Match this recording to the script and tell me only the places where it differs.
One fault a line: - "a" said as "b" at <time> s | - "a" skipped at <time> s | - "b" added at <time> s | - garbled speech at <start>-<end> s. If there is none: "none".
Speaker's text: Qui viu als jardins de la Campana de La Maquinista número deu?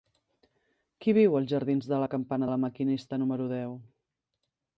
none